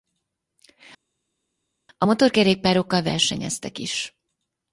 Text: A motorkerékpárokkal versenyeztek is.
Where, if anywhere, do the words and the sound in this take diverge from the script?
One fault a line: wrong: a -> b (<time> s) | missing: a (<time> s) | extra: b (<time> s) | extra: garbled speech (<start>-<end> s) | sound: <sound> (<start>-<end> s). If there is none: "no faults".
no faults